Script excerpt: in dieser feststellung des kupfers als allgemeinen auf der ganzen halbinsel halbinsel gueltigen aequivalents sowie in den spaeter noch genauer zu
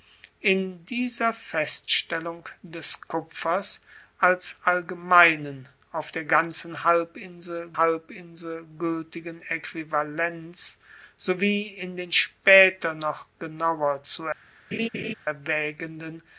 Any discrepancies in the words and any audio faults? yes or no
yes